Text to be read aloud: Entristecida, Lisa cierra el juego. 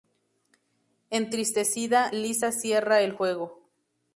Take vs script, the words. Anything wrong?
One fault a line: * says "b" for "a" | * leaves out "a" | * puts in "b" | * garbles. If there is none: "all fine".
all fine